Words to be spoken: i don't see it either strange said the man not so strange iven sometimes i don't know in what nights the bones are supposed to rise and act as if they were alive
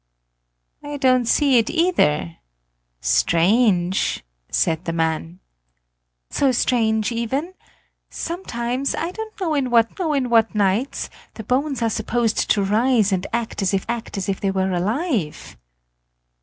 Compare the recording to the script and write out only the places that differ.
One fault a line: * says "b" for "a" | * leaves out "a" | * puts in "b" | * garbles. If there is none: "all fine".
* leaves out "not"
* puts in "know in what"
* puts in "act as if"